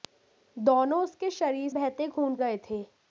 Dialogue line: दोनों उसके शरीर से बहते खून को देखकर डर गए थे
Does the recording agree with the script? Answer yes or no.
no